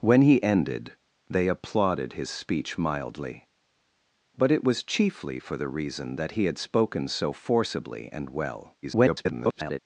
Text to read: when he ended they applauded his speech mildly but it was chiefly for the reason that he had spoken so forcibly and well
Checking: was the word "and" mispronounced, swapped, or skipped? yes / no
no